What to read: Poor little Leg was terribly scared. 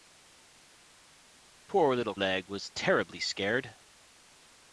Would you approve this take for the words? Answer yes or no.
yes